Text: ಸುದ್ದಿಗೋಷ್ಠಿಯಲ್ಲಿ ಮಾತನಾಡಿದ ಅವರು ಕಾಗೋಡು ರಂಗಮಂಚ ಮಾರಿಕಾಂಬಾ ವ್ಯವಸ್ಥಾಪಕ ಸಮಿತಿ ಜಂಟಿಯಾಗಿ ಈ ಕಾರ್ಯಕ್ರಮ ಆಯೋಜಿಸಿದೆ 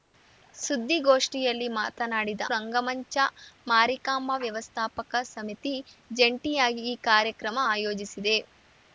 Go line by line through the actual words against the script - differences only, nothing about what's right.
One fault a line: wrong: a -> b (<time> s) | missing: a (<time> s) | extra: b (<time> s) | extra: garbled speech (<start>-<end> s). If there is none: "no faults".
missing: ಅವರು ಕಾಗೋಡು (2.4 s)